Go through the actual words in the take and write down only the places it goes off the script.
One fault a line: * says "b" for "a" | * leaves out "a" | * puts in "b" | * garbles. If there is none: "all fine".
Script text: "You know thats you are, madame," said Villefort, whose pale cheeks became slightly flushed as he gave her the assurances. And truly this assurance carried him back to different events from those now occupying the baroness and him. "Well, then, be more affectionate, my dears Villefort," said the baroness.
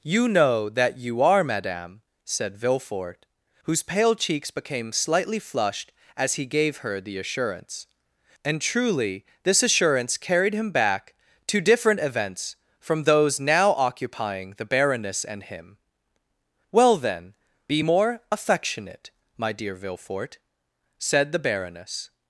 * says "that" for "thats"
* says "assurance" for "assurances"
* says "dear" for "dears"